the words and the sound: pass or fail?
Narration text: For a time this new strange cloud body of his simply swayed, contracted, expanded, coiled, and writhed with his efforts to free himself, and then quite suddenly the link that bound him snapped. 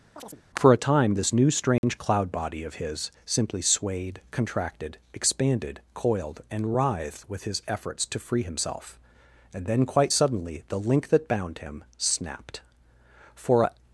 fail